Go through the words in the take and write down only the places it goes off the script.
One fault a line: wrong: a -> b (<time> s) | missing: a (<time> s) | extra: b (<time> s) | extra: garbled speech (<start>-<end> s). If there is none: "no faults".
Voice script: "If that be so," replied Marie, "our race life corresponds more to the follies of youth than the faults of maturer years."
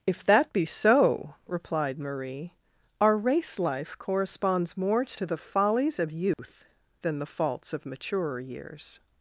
no faults